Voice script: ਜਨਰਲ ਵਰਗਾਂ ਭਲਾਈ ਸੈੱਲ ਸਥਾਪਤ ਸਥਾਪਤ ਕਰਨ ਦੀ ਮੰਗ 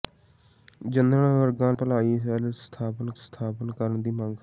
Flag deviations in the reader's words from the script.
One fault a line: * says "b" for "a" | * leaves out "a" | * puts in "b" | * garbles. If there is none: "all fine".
all fine